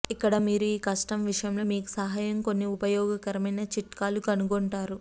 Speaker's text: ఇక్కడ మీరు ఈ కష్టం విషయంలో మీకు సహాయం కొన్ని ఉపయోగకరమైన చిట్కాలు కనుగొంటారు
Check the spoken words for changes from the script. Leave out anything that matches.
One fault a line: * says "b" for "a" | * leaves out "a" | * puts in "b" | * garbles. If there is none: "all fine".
all fine